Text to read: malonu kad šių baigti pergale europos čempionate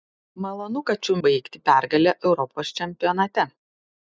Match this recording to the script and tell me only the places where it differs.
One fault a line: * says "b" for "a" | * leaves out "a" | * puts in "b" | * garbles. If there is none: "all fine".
all fine